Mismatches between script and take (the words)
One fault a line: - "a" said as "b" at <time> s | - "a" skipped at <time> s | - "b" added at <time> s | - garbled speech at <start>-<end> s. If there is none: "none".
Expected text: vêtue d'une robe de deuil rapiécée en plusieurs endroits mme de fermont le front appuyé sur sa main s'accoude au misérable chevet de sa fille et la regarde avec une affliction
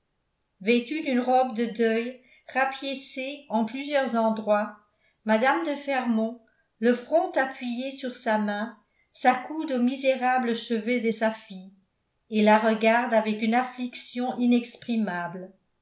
none